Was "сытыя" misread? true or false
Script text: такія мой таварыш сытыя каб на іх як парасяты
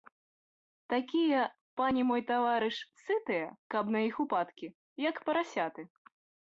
false